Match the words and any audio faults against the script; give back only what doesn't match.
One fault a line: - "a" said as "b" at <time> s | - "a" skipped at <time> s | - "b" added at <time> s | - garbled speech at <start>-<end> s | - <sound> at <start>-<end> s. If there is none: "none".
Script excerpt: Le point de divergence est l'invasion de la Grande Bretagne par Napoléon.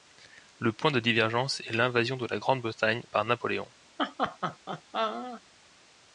- laugh at 4.0-5.4 s